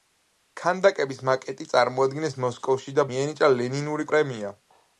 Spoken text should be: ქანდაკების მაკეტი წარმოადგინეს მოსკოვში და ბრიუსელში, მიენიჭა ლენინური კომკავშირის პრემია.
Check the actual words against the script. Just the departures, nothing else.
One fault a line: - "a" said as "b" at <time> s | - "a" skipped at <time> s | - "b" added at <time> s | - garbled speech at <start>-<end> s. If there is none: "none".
- "ბრიუსელში" skipped at 3.1 s
- "კომკავშირის" skipped at 4.1 s